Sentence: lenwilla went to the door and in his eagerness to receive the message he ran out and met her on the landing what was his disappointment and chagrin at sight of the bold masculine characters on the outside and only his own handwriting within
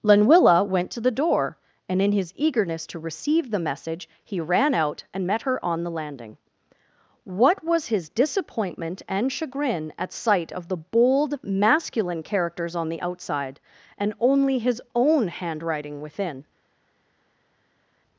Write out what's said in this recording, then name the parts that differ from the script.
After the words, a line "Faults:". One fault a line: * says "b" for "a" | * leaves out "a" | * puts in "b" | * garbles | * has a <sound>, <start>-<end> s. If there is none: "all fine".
lenwilla went to the door and in his eagerness to receive the message he ran out and met her on the landing what was his disappointment and chagrin at sight of the bold masculine characters on the outside and only his own handwriting within
Faults:
all fine